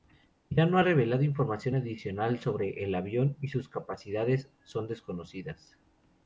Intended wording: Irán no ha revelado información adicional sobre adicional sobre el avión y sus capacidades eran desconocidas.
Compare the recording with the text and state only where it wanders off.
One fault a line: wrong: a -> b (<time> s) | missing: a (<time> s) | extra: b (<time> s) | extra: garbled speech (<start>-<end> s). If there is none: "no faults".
missing: adicional sobre (2.8 s)
wrong: eran -> son (4.6 s)